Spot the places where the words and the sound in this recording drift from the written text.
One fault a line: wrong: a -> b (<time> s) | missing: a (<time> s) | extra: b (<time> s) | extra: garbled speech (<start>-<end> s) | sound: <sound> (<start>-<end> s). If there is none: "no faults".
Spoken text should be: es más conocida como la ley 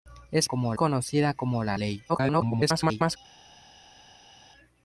wrong: más -> como (0.4 s)
extra: garbled speech (2.1-3.2 s)